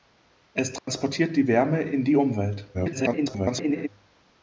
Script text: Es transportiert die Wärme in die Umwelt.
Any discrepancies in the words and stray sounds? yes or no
yes